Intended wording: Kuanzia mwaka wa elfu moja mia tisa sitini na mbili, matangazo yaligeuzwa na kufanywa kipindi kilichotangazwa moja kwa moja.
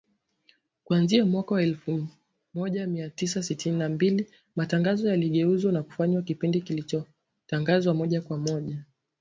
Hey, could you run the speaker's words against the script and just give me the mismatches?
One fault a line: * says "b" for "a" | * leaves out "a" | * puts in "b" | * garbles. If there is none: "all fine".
all fine